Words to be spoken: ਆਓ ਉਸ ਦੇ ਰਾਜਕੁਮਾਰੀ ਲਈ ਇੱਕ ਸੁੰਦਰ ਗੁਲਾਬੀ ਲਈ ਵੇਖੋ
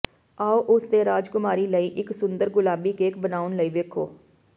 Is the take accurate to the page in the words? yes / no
no